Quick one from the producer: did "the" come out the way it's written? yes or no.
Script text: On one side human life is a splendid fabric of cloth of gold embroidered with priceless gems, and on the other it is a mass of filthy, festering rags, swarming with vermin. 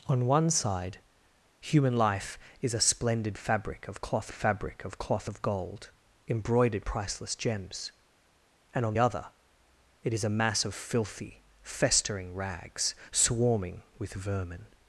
no